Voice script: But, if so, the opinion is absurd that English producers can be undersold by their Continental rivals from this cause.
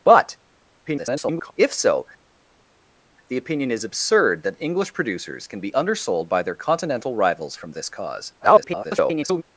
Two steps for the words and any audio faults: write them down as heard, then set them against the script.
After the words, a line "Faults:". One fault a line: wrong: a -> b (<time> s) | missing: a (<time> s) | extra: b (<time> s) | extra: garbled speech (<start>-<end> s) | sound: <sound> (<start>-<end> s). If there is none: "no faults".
But, [garbled] if so, the opinion is absurd that English producers can be undersold by their Continental rivals from this cause. [garbled]
Faults:
extra: garbled speech (0.9-1.5 s)
extra: garbled speech (8.4-9.4 s)